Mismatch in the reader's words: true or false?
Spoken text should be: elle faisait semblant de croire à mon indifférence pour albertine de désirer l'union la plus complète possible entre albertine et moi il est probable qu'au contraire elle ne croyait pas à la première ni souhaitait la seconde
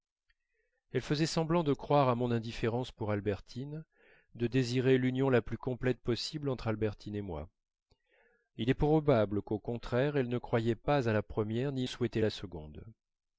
false